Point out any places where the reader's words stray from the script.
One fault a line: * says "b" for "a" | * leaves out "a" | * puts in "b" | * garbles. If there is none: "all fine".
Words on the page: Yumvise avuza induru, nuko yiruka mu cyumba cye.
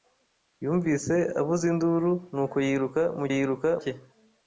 * says "yiruka" for "cyumba"